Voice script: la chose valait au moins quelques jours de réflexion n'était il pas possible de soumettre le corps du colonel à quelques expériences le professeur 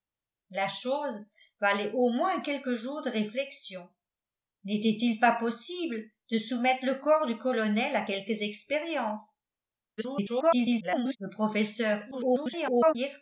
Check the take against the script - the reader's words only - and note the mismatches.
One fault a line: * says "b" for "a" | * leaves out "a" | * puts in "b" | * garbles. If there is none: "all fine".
* garbles
* garbles